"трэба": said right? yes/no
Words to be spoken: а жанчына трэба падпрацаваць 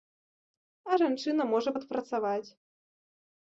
no